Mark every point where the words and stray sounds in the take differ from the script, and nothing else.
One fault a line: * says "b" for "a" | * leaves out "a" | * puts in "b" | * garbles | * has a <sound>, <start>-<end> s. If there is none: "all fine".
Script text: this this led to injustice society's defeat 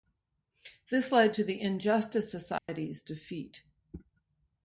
* leaves out "this"
* puts in "the"
* has a dropout, 2.6-2.7 s